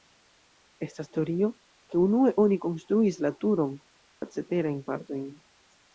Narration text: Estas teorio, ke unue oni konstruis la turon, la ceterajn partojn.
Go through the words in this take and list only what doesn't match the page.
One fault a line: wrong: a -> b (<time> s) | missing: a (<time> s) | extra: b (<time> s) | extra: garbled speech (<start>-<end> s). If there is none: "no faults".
no faults